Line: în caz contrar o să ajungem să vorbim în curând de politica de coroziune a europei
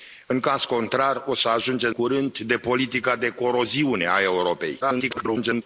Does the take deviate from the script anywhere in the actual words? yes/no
yes